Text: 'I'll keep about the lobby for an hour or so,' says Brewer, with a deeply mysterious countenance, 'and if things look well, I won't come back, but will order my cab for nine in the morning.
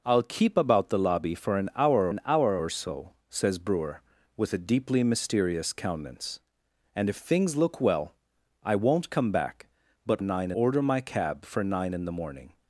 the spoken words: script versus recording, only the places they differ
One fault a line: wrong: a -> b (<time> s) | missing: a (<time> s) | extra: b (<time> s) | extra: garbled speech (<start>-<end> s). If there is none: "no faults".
extra: an hour (2.1 s)
wrong: will -> nine (10.2 s)